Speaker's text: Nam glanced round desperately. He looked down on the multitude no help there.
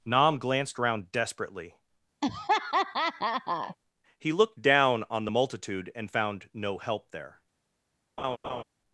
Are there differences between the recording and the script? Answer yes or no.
yes